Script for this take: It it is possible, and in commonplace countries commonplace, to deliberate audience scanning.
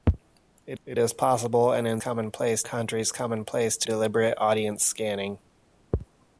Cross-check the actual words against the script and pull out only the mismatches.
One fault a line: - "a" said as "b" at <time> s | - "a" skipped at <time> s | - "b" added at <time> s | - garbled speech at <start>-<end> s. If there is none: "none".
none